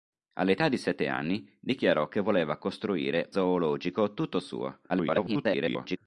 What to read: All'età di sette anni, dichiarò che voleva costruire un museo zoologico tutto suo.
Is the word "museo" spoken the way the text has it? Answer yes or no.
no